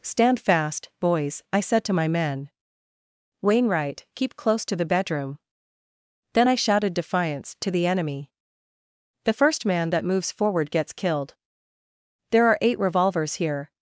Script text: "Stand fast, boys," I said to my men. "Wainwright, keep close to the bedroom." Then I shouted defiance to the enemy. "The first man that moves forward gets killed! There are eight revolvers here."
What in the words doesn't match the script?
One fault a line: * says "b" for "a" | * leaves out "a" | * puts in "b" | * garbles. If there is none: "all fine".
all fine